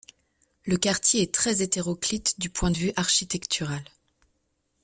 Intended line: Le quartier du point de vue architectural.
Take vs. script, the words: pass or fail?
fail